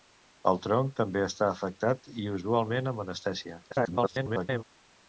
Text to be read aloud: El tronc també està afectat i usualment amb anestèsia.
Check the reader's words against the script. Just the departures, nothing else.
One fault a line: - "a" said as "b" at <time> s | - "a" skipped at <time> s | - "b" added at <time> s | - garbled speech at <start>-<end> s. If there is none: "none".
- garbled speech at 3.7-4.6 s